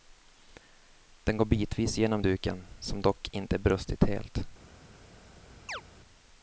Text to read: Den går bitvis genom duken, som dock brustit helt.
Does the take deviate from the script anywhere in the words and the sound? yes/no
yes